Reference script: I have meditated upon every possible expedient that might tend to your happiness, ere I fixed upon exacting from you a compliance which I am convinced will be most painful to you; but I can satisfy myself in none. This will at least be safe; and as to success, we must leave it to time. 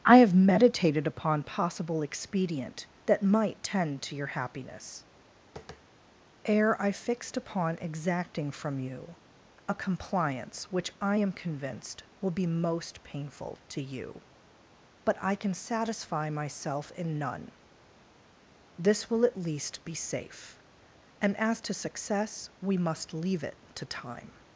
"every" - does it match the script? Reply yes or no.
no